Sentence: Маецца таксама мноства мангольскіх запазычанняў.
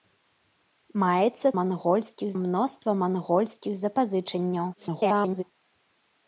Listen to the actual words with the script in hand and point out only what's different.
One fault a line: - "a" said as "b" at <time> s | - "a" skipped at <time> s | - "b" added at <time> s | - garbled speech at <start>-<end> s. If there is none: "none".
- "таксама" said as "мангольскіх" at 1.6 s
- garbled speech at 4.7-5.4 s